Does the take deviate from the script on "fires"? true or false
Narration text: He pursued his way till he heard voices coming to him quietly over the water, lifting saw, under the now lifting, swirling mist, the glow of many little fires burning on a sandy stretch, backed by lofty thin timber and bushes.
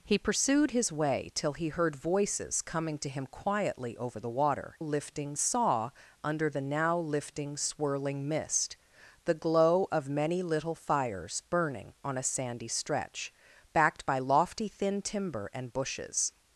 false